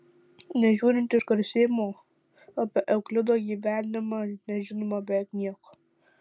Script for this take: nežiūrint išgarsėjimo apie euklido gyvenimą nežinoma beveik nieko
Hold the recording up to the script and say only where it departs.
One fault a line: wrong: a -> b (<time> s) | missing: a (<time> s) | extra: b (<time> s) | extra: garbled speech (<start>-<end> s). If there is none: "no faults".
no faults